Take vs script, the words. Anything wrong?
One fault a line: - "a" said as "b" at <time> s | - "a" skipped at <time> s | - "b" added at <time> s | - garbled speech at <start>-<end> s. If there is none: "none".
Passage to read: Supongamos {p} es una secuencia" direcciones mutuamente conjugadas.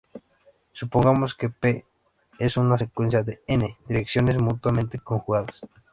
- "que" added at 1.4 s
- "de n" added at 3.2 s